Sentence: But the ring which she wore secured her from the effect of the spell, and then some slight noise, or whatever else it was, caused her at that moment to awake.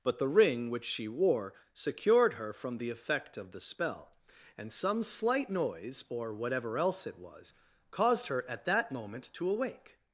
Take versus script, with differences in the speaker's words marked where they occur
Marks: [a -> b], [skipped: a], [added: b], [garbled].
But the ring which she wore secured her from the effect of the spell, and [skipped: then] some slight noise, or whatever else it was, caused her at that moment to awake.